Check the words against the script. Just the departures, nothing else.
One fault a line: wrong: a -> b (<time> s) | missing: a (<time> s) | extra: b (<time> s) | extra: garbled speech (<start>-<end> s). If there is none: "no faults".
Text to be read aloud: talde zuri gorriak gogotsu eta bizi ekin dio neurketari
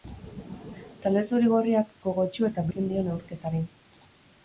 missing: bizi (2.6 s)